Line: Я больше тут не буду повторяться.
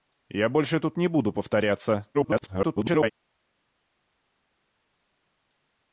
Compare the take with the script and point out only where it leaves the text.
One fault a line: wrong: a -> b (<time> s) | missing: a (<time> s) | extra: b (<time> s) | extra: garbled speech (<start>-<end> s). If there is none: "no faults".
extra: garbled speech (2.1-3.1 s)